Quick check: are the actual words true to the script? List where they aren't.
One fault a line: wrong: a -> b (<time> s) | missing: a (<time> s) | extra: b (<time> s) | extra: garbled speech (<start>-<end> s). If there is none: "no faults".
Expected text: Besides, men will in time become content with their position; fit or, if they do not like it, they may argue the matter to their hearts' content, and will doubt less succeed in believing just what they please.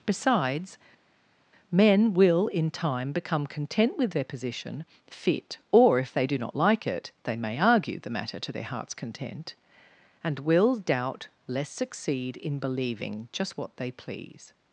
no faults